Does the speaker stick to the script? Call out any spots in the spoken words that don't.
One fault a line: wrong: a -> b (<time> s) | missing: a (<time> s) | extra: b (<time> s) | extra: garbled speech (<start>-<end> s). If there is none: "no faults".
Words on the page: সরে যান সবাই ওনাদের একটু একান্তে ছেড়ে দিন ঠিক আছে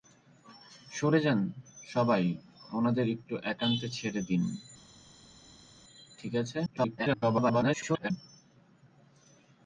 extra: garbled speech (6.7-8.1 s)